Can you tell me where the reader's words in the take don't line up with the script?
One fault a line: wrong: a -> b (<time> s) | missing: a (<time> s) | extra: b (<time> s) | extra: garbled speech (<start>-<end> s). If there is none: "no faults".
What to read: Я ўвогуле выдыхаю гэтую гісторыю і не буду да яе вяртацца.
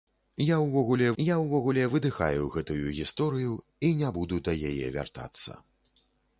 extra: я ўвогуле (1.2 s)